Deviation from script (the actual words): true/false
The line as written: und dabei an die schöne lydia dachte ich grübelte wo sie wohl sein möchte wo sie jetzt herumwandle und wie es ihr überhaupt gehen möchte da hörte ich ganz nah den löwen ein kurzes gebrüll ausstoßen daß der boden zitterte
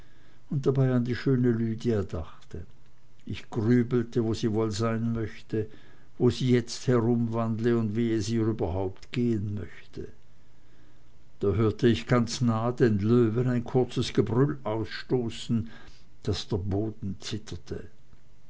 false